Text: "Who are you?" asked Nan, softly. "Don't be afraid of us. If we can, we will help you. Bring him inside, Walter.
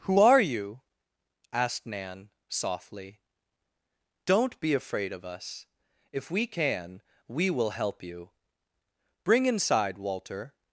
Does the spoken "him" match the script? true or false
false